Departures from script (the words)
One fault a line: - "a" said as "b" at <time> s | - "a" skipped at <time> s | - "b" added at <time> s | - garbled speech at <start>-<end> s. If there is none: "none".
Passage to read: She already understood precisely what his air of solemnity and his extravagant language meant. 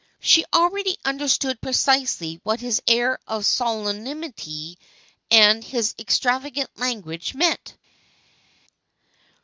none